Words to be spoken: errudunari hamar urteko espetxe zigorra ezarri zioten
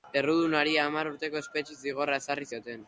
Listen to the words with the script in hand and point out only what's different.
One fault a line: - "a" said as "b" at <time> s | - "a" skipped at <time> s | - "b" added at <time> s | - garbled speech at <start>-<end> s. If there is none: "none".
none